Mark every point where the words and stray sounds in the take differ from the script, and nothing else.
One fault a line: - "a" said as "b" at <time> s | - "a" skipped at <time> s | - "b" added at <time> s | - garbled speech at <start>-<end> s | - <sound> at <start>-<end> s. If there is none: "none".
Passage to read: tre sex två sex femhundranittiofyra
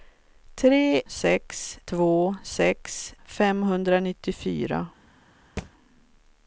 - thud at 5.6-5.7 s